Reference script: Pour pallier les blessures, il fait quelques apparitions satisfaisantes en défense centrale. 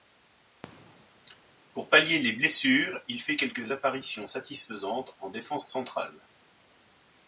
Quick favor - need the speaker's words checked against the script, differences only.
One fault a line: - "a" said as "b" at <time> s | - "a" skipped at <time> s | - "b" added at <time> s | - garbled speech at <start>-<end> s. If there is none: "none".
none